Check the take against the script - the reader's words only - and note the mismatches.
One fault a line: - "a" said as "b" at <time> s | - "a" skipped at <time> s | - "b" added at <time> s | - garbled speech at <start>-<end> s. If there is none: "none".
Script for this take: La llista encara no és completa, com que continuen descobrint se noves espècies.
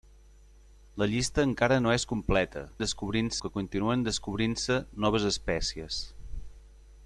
- "com" said as "descobrint" at 2.8 s